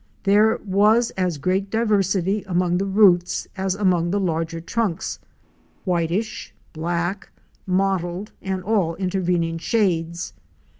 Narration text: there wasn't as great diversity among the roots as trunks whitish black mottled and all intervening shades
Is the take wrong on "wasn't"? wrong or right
wrong